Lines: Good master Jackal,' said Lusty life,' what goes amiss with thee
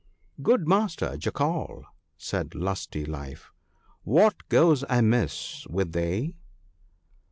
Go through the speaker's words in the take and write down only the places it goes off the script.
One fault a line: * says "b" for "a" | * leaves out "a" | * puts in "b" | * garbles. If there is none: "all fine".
all fine